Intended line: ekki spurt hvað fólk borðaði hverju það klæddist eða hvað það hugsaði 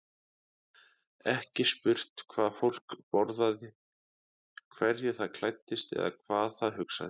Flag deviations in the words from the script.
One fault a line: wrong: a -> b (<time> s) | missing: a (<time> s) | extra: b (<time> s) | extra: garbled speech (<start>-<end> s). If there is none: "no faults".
no faults